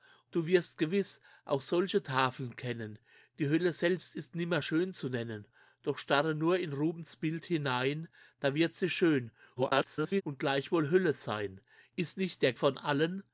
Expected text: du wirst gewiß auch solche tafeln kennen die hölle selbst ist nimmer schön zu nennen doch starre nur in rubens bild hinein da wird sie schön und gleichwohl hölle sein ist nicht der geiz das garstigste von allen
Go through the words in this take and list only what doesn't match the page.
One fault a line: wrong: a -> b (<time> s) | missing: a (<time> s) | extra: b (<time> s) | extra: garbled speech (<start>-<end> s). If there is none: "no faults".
extra: garbled speech (9.6-10.2 s)
missing: geiz das garstigste (12.5 s)